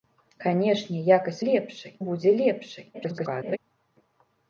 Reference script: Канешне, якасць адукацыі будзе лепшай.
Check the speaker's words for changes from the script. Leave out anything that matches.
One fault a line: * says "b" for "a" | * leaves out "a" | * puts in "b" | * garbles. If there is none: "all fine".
* says "лепшай" for "адукацыі"
* garbles